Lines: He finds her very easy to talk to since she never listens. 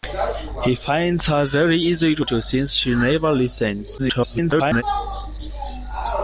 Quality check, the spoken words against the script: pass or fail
fail